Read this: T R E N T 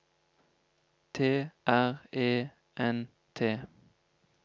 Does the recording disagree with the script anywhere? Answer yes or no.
no